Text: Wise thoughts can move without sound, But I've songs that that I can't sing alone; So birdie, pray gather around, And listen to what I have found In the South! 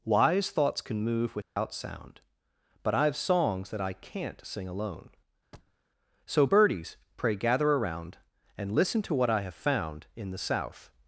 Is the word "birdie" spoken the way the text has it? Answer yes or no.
no